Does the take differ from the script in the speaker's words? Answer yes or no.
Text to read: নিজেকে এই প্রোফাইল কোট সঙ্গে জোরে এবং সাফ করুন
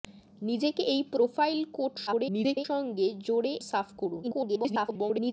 yes